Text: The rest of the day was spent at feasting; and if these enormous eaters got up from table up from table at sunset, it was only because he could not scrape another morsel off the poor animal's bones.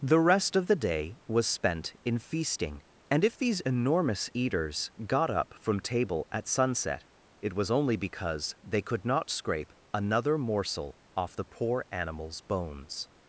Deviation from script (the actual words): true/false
true